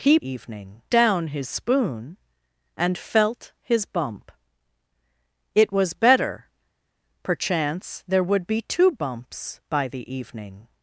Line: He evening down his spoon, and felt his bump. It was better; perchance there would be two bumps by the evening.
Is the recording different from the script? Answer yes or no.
no